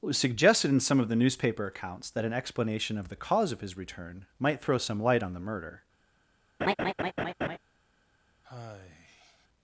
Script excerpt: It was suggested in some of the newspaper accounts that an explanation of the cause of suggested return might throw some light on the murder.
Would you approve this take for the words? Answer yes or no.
no